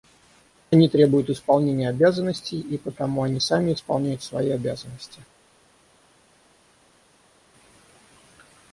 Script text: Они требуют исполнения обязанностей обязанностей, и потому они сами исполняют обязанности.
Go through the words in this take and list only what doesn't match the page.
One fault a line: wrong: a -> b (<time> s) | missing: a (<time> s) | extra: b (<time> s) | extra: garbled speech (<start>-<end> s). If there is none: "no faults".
missing: обязанностей (2.6 s)
extra: свои (4.2 s)